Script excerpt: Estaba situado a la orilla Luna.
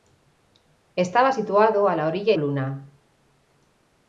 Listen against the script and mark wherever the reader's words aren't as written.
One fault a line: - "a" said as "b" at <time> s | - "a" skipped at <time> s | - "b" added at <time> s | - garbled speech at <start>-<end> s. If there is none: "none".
none